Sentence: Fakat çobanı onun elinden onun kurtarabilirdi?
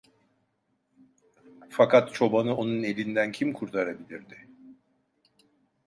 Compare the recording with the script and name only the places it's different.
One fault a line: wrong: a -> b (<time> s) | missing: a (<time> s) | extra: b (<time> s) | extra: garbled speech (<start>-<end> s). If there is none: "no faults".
wrong: onun -> kim (3.3 s)